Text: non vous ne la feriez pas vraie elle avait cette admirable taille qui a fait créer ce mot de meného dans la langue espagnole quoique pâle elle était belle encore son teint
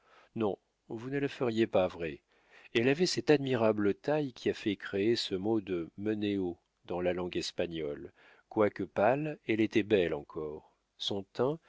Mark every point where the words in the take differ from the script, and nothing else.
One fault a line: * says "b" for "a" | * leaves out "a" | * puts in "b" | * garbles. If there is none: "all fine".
all fine